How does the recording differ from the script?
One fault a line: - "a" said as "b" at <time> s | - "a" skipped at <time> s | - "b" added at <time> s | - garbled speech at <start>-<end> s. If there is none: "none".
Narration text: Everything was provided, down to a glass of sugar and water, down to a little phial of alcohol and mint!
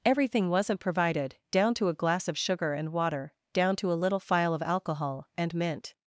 - "was" said as "wasn't" at 0.5 s